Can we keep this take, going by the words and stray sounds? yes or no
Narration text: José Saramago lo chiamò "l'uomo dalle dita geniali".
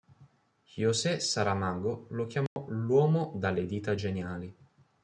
no